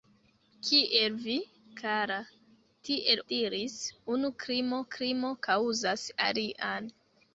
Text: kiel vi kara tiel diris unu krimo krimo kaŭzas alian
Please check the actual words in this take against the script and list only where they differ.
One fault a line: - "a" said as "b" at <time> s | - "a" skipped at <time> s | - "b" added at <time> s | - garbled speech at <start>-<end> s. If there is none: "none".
none